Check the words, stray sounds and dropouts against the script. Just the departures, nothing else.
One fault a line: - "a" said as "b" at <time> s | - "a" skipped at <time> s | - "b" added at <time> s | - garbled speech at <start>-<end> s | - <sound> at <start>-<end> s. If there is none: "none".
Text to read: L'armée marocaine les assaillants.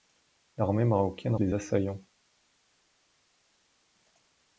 none